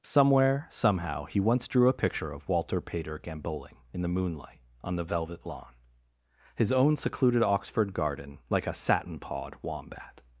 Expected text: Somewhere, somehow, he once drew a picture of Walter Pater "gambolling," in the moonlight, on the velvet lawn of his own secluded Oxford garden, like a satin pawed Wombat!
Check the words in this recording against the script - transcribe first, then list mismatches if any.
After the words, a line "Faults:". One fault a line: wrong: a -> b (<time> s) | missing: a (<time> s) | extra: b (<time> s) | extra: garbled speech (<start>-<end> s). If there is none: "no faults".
Somewhere, somehow, he once drew a picture of Walter Pater "gambolling," in the moonlight, on the velvet lawn his own secluded Oxford garden, like a satin pawed Wombat!
Faults:
missing: of (5.8 s)